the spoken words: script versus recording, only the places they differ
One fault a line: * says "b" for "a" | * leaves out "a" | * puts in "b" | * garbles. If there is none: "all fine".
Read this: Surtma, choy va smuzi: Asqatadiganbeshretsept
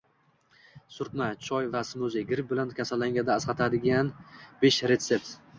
* puts in "Gripp bilan kasallanganda"